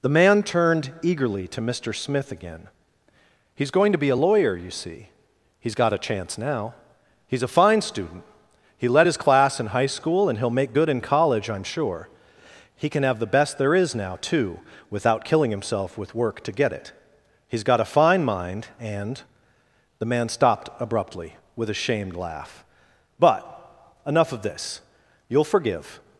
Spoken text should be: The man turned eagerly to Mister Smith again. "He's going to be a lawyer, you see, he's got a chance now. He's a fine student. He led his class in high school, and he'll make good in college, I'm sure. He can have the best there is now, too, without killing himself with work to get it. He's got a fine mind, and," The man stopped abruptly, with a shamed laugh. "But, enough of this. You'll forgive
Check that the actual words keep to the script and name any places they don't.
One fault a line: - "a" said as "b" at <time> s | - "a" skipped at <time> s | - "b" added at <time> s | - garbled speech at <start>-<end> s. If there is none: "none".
none